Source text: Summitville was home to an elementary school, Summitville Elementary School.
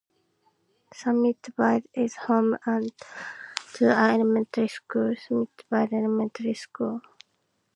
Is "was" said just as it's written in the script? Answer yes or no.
no